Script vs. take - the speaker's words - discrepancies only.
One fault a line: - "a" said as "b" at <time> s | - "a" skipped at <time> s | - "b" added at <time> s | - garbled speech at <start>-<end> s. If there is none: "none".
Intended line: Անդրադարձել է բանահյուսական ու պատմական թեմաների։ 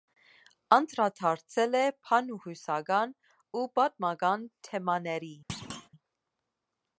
none